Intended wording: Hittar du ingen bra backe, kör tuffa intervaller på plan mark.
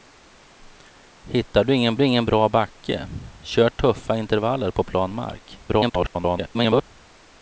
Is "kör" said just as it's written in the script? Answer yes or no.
yes